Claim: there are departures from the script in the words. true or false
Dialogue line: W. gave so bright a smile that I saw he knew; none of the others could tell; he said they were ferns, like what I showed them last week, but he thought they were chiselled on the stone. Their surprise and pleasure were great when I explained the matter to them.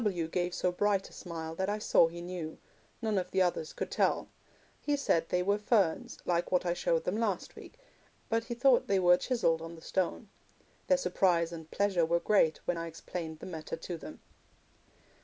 false